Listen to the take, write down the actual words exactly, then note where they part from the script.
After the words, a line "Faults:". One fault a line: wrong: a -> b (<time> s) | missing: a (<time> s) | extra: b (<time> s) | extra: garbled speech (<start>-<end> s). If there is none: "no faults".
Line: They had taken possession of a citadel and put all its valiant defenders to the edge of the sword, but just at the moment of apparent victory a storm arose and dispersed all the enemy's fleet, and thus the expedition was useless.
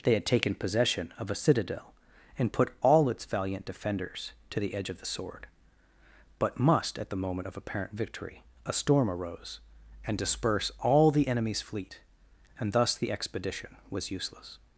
They had taken possession of a citadel and put all its valiant defenders to the edge of the sword, but must at the moment of apparent victory a storm arose and disperse all the enemy's fleet, and thus the expedition was useless.
Faults:
wrong: just -> must (6.6 s)
wrong: dispersed -> disperse (10.2 s)